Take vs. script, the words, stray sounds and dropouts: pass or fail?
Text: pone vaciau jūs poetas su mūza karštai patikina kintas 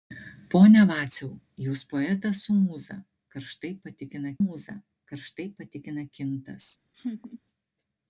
fail